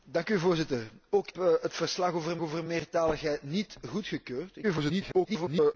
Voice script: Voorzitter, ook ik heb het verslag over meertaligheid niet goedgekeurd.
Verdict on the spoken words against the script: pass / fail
fail